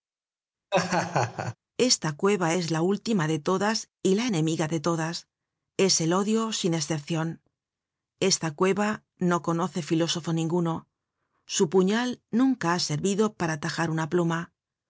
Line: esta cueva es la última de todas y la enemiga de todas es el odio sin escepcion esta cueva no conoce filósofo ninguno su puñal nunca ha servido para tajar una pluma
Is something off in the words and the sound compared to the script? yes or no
yes